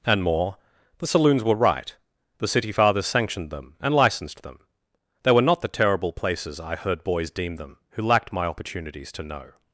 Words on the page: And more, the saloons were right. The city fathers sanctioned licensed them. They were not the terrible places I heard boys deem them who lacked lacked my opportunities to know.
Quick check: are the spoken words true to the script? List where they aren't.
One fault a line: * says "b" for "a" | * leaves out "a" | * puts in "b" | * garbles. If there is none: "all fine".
* puts in "them and"
* leaves out "lacked"